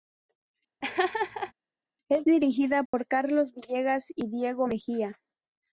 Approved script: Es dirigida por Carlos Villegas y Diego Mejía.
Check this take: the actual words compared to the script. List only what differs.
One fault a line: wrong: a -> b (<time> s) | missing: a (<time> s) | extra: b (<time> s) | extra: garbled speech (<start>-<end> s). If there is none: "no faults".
no faults